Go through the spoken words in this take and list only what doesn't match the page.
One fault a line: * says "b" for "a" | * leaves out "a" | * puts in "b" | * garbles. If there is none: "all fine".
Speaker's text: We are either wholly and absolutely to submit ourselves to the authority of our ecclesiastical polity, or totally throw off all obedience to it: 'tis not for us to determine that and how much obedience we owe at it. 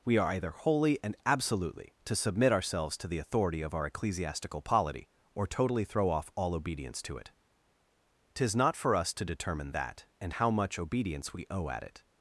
all fine